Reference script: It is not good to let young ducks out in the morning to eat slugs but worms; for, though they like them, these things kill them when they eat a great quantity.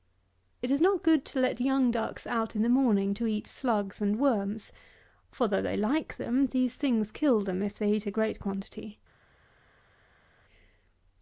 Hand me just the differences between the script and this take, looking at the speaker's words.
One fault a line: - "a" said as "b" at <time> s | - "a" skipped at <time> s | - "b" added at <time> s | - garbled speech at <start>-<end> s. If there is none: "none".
- "but" said as "and" at 4.0 s
- "when" said as "if" at 7.6 s